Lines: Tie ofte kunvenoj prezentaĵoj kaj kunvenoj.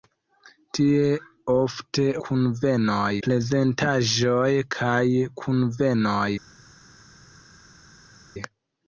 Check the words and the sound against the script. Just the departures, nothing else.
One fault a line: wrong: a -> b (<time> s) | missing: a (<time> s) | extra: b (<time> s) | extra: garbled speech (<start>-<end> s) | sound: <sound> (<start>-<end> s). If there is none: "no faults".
no faults